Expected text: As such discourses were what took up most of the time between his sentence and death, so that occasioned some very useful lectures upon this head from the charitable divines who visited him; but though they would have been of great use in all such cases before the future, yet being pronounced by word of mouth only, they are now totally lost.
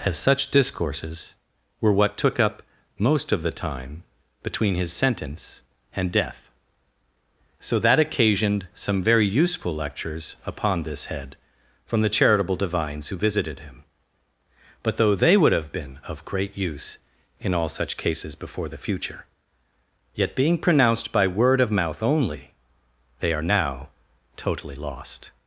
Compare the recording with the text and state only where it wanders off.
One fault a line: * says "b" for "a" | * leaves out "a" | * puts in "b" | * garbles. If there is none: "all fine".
all fine